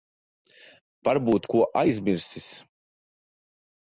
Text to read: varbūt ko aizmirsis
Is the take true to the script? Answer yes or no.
yes